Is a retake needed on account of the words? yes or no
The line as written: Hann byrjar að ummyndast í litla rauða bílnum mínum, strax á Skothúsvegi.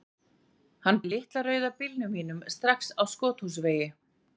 yes